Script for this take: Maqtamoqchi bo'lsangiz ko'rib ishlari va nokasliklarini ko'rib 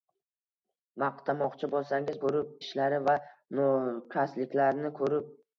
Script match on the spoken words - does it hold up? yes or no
yes